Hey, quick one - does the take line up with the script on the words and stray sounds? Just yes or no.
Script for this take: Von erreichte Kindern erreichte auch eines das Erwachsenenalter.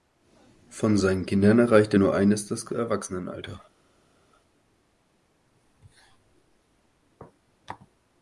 no